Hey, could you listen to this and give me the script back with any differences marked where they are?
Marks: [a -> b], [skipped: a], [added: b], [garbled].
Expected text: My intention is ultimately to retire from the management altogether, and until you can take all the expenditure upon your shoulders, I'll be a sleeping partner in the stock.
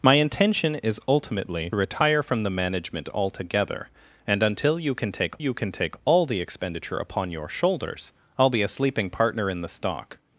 My intention is ultimately [skipped: to] retire from the management altogether, and until you can take [added: you can take] all the expenditure upon your shoulders, I'll be a sleeping partner in the stock.